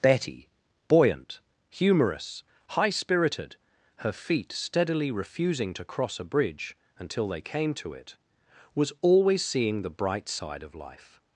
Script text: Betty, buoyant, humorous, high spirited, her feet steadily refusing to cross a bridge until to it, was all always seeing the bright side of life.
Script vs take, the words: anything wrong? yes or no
yes